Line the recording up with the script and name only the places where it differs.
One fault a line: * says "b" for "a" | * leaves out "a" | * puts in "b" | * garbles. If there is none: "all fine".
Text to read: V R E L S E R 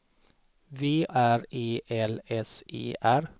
all fine